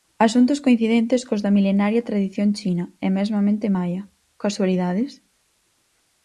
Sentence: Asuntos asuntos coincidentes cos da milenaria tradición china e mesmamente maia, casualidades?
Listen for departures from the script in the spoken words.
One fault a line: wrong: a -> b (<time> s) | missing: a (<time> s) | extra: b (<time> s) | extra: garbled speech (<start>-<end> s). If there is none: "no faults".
missing: asuntos (0.6 s)